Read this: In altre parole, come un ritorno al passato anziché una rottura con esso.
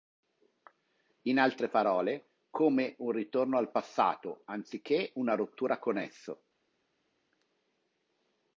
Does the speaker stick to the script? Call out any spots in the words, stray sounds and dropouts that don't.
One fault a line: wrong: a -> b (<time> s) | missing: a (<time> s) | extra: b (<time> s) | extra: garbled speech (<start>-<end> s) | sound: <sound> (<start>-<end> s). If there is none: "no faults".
no faults